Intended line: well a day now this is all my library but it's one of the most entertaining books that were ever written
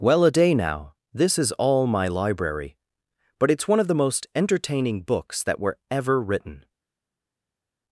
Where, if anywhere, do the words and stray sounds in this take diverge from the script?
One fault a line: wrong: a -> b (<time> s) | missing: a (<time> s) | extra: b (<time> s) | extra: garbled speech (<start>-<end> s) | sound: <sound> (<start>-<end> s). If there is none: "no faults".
no faults